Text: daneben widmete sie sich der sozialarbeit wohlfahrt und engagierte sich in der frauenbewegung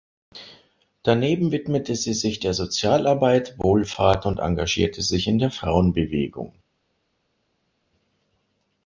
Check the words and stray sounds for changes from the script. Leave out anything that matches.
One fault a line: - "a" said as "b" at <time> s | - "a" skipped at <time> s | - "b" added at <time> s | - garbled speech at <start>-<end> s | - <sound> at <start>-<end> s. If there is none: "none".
none